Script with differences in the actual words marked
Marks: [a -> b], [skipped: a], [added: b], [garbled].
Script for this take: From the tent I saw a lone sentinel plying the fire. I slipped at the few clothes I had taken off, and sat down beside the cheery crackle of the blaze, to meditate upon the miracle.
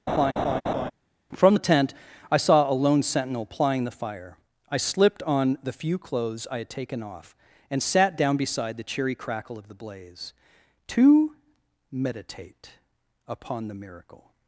From the tent I saw a lone sentinel plying the fire. I slipped [at -> on] the few clothes I had taken off, and sat down beside the cheery crackle of the blaze, to meditate upon the miracle.